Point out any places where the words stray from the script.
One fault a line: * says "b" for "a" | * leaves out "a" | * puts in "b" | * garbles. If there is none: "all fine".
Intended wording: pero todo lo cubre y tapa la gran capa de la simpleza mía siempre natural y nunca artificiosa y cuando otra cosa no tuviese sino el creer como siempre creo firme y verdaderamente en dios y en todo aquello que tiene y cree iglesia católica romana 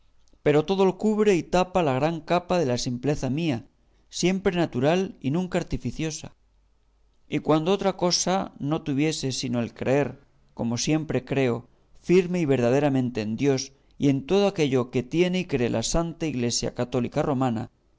* puts in "la santa"